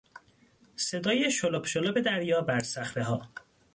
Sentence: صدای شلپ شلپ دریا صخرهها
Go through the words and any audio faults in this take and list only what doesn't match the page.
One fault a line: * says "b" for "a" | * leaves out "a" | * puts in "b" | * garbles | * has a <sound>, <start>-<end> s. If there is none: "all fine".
* puts in "بر"